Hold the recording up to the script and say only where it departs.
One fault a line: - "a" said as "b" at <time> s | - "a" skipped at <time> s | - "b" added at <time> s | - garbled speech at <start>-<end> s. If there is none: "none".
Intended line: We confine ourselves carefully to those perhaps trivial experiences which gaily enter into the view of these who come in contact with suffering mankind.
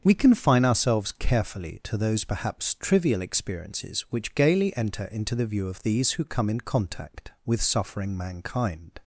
none